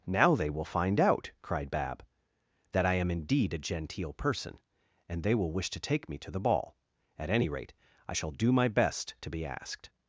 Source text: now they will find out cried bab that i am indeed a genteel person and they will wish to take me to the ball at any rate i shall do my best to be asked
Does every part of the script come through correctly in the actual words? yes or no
yes